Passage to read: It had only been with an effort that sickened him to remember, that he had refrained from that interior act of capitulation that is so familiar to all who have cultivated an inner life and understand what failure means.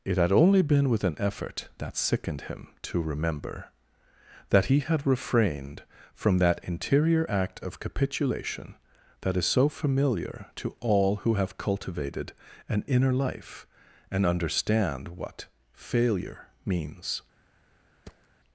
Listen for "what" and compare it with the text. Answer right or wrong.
right